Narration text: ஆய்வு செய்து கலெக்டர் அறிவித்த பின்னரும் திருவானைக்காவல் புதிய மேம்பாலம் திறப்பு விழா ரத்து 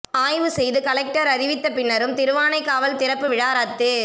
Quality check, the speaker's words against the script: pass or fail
fail